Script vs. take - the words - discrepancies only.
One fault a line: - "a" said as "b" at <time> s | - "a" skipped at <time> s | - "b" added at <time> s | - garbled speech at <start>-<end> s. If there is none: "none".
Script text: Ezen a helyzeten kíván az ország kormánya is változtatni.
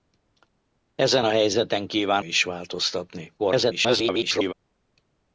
- "az ország kormánya" skipped at 2.2 s
- garbled speech at 3.4-4.5 s